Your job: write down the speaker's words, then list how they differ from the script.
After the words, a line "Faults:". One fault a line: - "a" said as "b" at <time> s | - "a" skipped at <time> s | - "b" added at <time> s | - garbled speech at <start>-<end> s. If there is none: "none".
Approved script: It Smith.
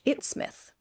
It Smith.
Faults:
none